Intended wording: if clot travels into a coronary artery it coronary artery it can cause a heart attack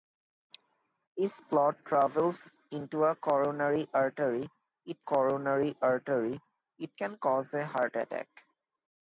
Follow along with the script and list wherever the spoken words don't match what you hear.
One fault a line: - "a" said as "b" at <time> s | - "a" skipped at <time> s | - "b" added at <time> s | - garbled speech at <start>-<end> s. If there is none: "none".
none